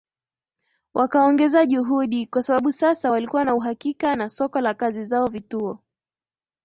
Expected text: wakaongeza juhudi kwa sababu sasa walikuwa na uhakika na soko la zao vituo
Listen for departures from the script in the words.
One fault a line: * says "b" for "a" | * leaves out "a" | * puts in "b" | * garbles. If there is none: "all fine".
* puts in "kazi"